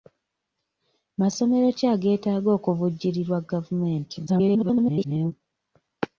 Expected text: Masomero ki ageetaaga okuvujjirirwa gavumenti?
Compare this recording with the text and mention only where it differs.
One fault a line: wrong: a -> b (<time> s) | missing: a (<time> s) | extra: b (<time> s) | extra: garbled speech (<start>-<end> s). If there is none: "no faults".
extra: garbled speech (4.3-5.3 s)